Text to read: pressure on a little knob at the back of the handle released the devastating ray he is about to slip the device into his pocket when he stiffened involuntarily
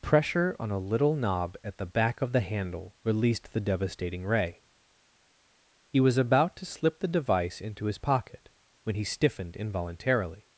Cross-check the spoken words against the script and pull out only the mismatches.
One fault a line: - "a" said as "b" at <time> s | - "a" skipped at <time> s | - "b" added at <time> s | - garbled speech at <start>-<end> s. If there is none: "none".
- "is" said as "was" at 6.0 s